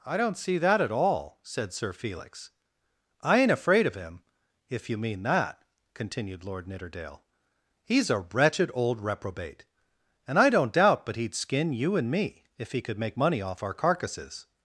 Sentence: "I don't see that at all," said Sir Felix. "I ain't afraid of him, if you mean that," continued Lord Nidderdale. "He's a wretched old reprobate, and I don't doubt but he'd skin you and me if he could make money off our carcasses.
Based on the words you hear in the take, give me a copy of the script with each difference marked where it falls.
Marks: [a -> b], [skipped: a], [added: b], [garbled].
"I don't see that at all," said Sir Felix. "I ain't afraid of him, if you mean that," continued Lord Nidderdale. "He's a wretched old reprobate, and I don't doubt but he'd skin you and me if he could make money off our carcasses.